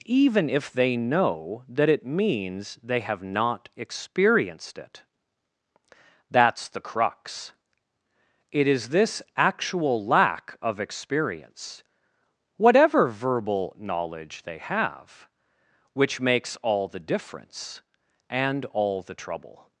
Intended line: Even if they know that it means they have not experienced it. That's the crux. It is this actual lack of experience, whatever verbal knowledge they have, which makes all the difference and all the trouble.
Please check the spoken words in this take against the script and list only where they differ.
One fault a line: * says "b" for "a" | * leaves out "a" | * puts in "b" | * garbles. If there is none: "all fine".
all fine